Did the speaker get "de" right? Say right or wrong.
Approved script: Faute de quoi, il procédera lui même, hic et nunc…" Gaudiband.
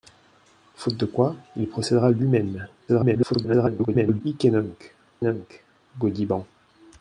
right